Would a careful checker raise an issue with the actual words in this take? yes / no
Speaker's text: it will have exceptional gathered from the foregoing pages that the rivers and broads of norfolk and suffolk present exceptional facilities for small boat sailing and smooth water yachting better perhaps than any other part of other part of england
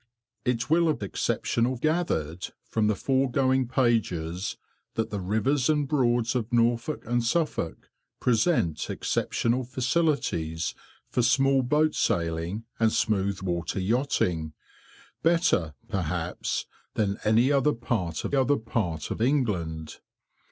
no